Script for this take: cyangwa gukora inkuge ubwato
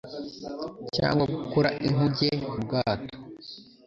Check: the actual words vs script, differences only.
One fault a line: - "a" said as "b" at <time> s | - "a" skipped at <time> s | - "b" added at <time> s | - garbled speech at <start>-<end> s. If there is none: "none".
none